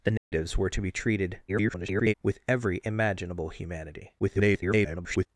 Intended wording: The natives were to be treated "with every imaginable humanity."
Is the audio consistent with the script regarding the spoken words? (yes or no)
no